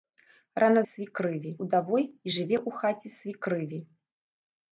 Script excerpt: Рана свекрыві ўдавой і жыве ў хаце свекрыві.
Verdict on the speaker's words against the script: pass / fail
pass